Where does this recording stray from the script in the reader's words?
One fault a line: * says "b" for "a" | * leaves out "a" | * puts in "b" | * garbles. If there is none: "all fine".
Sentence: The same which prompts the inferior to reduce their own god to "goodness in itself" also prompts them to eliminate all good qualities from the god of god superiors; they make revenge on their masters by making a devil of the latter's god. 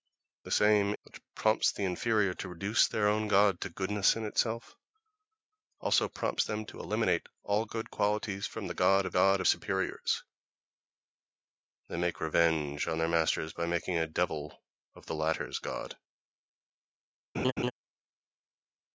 all fine